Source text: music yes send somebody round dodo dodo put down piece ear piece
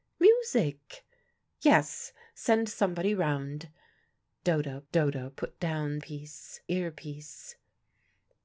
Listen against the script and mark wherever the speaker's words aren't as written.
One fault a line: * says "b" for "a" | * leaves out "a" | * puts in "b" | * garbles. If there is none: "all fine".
all fine